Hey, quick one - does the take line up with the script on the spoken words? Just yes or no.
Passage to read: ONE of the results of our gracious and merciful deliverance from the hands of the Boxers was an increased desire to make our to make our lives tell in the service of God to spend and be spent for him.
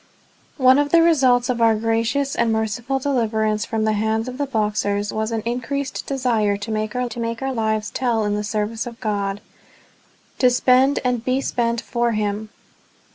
yes